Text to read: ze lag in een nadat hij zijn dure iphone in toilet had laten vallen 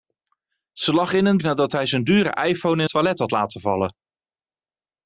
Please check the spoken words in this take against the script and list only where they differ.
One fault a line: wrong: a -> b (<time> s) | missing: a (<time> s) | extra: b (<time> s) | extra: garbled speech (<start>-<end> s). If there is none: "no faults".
no faults